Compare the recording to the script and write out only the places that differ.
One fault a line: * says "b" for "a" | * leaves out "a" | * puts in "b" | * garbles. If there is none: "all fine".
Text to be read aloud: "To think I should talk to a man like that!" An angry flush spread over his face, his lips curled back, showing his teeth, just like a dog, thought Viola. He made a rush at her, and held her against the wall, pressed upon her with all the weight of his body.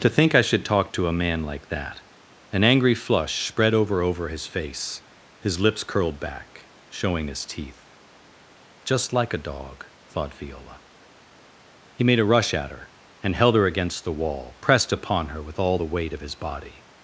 * puts in "over"